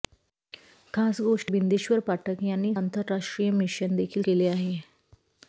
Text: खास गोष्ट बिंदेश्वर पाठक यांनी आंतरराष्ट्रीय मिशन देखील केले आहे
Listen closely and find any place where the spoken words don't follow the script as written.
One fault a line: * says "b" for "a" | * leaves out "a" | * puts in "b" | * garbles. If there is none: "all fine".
all fine